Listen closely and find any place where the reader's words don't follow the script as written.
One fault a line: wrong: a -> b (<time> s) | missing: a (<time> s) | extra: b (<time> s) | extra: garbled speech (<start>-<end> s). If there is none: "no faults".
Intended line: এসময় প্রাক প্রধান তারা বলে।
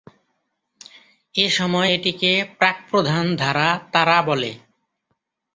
extra: এটিকে (1.9 s)
extra: ধারা (3.4 s)